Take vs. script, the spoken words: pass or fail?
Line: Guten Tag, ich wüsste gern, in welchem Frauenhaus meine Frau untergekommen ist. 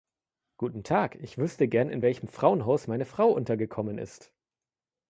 pass